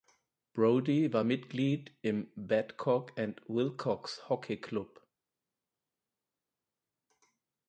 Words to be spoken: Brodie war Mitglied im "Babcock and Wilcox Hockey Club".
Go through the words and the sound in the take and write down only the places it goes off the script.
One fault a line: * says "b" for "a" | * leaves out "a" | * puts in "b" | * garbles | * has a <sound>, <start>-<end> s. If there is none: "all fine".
all fine